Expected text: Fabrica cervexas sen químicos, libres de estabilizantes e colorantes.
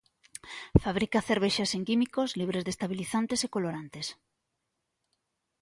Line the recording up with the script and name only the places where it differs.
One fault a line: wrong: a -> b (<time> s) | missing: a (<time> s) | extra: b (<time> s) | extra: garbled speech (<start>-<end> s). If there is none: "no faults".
no faults